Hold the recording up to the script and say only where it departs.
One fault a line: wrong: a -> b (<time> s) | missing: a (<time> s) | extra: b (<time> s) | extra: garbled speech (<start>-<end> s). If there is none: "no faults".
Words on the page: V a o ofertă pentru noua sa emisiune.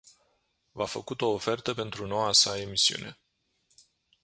extra: făcut (0.8 s)